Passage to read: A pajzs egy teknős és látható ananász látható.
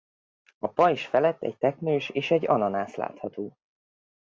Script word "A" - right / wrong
right